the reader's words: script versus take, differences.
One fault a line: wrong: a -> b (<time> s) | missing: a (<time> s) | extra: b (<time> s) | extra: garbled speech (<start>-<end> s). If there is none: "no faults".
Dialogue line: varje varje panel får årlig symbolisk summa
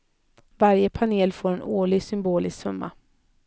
missing: varje (0.9 s)
extra: en (1.5 s)